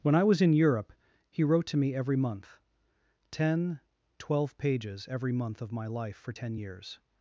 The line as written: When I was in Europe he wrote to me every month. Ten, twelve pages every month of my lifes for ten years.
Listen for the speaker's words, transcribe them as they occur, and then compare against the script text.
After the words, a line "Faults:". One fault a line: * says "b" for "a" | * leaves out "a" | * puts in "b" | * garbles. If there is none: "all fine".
When I was in Europe he wrote to me every month. Ten, twelve pages every month of my life for ten years.
Faults:
* says "life" for "lifes"